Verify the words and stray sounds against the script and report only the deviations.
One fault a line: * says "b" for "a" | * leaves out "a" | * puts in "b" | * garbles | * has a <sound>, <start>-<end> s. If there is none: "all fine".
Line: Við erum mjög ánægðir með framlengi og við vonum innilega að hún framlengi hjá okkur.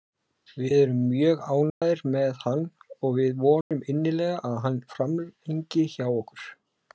* has a dropout, 1.7-1.8 s
* says "hann" for "framlengi"
* has a dropout, 3.6-3.7 s
* says "hann" for "hún"